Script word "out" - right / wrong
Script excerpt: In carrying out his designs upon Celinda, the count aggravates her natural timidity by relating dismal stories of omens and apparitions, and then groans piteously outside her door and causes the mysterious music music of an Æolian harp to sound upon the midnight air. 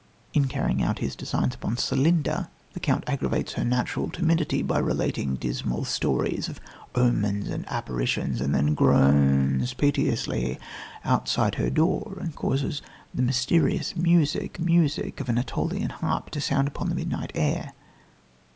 right